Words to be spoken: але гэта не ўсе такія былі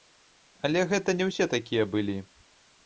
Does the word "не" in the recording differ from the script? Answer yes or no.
no